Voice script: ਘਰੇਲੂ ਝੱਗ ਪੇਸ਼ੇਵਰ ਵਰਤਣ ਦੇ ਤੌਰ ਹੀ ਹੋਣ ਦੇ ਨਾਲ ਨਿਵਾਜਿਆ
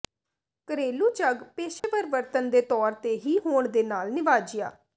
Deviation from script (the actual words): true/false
true